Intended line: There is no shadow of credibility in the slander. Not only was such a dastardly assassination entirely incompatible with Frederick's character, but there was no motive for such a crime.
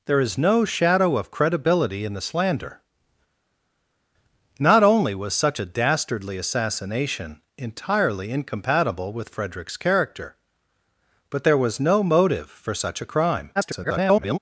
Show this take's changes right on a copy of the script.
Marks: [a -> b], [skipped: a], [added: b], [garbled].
There is no shadow of credibility in the slander. Not only was such a dastardly assassination entirely incompatible with Frederick's character, but there was no motive for such a crime. [garbled]